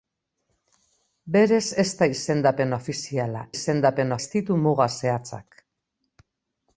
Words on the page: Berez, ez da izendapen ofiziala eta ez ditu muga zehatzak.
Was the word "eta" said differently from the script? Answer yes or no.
yes